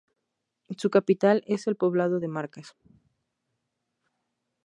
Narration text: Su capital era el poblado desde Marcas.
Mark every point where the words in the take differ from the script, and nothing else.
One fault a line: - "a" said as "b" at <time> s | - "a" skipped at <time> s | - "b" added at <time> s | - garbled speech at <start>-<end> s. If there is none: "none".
- "era" said as "es" at 1.4 s
- "desde" said as "de" at 2.2 s